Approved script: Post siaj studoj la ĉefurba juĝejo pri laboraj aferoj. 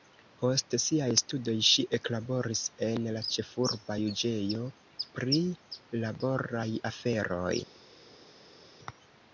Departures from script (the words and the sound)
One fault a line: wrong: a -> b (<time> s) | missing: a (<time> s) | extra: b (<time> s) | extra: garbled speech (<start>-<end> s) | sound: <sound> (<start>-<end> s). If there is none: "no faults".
extra: ŝi eklaboris en (1.7 s)